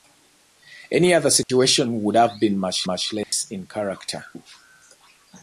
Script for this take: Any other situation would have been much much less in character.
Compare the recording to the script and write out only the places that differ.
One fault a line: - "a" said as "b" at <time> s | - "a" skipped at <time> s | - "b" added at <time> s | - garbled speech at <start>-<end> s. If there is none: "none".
none